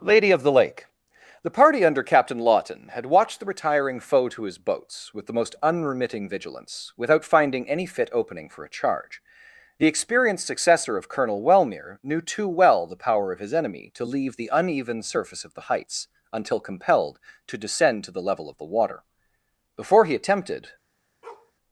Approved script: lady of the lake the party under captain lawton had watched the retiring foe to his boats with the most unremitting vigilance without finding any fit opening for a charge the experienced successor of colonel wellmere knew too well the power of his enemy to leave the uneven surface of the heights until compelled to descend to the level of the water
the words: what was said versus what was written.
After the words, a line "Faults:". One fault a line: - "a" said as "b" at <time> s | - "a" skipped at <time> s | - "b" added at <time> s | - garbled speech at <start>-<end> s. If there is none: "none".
lady of the lake the party under captain lawton had watched the retiring foe to his boats with the most unremitting vigilance without finding any fit opening for a charge the experienced successor of colonel wellmere knew too well the power of his enemy to leave the uneven surface of the heights until compelled to descend to the level of the water before he attempted
Faults:
- "before he attempted" added at 19.7 s